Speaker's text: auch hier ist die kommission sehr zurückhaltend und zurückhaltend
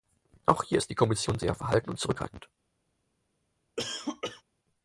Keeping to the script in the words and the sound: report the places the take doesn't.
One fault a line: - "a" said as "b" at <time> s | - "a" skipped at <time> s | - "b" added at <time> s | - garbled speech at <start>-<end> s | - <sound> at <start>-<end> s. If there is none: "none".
- "zurückhaltend" said as "verhalten" at 1.5 s
- cough at 3.8-4.4 s